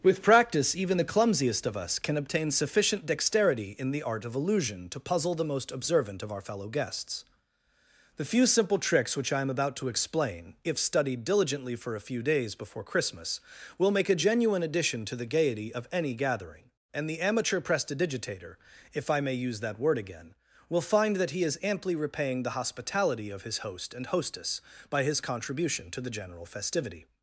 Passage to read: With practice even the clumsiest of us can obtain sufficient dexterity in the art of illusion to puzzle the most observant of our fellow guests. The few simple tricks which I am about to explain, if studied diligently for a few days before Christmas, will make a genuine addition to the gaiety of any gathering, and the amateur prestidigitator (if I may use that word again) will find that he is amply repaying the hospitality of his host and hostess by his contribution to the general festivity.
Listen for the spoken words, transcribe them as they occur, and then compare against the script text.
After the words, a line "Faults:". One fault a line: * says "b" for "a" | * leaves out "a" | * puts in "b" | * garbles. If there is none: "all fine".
With practice even the clumsiest of us can obtain sufficient dexterity in the art of illusion to puzzle the most observant of our fellow guests. The few simple tricks which I am about to explain, if studied diligently for a few days before Christmas, will make a genuine addition to the gaiety of any gathering, and the amateur prestidigitator (if I may use that word again) will find that he is amply repaying the hospitality of his host and hostess by his contribution to the general festivity.
Faults:
all fine